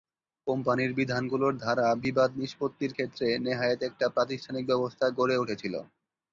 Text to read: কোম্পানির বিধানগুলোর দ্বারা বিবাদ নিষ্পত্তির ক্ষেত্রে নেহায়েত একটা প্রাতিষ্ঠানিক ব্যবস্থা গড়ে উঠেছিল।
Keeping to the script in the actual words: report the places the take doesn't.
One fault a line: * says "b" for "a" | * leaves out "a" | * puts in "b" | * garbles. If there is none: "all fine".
all fine